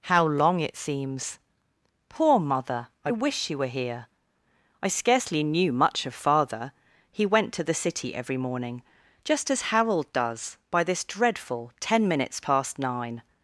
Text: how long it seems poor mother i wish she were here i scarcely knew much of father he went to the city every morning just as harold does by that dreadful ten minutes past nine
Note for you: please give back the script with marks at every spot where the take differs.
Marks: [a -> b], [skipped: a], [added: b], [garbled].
how long it seems poor mother i wish she were here i scarcely knew much of father he went to the city every morning just as harold does by [that -> this] dreadful ten minutes past nine